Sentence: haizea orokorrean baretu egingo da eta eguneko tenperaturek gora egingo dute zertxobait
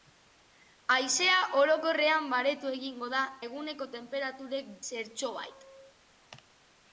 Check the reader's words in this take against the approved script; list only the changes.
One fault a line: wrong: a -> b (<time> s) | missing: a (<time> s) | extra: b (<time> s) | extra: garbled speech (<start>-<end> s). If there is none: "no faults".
missing: eta (3.2 s)
missing: gora egingo dute (4.7 s)